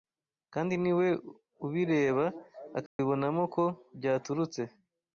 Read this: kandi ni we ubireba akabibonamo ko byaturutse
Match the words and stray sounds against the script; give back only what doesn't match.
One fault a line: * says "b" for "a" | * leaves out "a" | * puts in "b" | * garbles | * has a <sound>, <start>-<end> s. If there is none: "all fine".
* has a dropout, 2.9-3.0 s